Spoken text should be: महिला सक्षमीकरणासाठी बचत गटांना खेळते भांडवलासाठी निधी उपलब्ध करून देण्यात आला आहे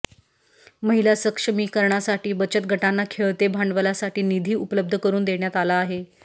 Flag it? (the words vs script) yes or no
no